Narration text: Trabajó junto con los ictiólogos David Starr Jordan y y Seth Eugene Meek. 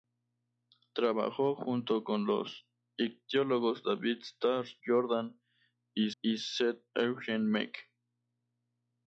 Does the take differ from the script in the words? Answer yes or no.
no